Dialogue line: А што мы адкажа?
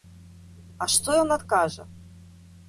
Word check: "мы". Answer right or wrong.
wrong